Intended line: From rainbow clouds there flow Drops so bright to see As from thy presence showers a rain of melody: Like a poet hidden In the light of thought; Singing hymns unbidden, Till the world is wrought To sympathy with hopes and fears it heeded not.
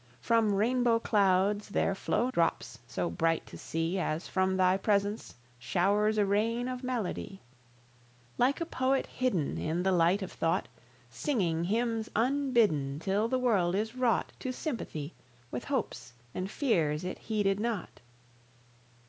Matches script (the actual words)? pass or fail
pass